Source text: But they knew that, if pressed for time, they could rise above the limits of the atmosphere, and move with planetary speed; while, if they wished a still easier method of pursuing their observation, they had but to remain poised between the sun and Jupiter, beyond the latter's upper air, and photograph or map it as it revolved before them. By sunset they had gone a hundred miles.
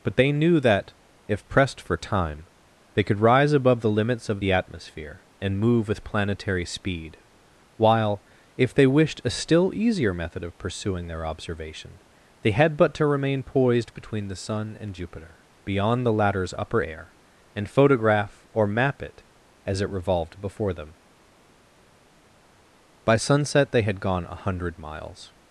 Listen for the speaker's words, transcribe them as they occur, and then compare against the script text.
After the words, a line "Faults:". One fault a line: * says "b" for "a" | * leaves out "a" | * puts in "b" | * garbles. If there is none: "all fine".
But they knew that, if pressed for time, they could rise above the limits of the atmosphere, and move with planetary speed; while, if they wished a still easier method of pursuing their observation, they had but to remain poised between the sun and Jupiter, beyond the latter's upper air, and photograph or map it as it revolved before them. By sunset they had gone a hundred miles.
Faults:
all fine